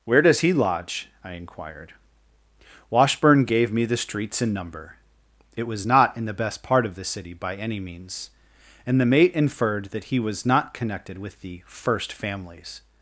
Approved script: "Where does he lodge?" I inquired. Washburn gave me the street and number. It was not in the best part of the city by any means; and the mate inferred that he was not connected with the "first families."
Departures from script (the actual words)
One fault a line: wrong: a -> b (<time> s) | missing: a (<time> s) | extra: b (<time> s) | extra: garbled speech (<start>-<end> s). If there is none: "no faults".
wrong: street -> streets (4.0 s)